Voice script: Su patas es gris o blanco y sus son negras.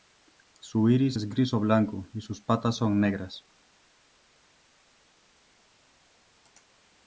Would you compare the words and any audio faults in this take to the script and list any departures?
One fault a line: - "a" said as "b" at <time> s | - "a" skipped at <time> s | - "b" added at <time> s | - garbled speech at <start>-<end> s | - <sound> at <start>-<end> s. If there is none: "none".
- "patas" said as "iris" at 0.9 s
- "patas" added at 2.4 s